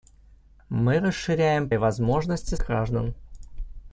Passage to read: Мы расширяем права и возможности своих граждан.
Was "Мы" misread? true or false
false